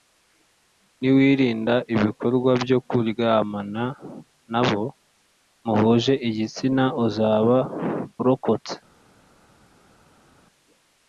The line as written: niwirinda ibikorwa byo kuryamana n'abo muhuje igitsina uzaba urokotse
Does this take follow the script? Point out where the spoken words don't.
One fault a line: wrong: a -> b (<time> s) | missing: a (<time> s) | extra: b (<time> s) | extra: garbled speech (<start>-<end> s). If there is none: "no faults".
no faults